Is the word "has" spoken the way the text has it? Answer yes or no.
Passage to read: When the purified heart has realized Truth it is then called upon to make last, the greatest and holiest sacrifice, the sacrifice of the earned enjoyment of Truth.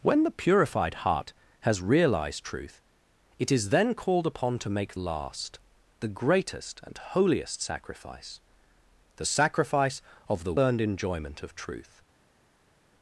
yes